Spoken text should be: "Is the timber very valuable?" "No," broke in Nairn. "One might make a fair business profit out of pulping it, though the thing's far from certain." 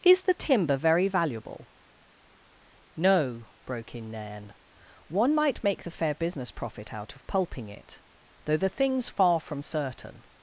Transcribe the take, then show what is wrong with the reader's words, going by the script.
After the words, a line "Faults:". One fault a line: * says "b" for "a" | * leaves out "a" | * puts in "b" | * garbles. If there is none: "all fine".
"Is the timber very valuable?" "No," broke in Nairn. "One might make the fair business profit out of pulping it, though the thing's far from certain."
Faults:
* says "the" for "a"